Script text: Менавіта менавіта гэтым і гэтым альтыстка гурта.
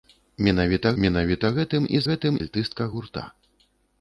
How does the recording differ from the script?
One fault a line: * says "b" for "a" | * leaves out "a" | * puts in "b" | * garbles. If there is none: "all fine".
all fine